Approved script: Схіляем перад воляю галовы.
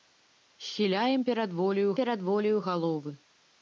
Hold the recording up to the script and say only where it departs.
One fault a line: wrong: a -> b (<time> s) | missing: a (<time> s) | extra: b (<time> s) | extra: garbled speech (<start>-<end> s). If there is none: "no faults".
extra: перад воляю (2.0 s)